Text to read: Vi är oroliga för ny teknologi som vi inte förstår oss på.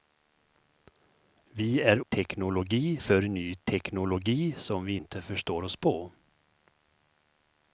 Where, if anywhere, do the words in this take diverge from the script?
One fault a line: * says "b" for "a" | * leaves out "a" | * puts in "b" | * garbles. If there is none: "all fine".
* says "teknologi" for "oroliga"